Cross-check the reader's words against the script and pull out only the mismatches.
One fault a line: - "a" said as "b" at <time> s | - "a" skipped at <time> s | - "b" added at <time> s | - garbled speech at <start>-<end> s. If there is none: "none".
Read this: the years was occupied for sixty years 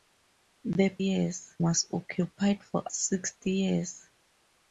none